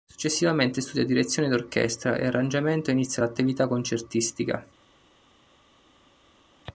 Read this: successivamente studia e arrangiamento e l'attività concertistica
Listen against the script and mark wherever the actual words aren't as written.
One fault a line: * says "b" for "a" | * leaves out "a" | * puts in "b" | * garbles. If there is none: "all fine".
* puts in "direzione d'orchestra"
* puts in "inizia"